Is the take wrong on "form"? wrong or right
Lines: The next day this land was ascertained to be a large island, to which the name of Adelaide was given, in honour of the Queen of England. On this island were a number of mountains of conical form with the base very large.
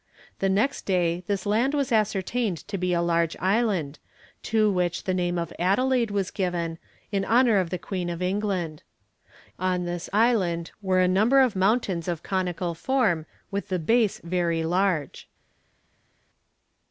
right